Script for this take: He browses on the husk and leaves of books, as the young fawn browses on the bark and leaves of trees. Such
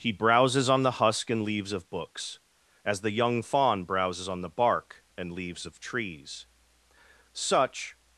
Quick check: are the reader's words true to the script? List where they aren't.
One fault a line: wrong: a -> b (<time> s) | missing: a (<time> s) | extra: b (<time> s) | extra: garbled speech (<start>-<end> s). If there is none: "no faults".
no faults